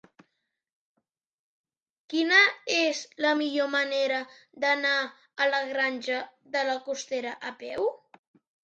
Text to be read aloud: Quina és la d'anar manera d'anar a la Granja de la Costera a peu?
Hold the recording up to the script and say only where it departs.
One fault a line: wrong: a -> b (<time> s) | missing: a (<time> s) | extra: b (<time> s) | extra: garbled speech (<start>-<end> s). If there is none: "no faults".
wrong: d'anar -> millor (3.4 s)